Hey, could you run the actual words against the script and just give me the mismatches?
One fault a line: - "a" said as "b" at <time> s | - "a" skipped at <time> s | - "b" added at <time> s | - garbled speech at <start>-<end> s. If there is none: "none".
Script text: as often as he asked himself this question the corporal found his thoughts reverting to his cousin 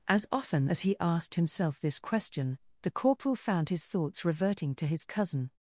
none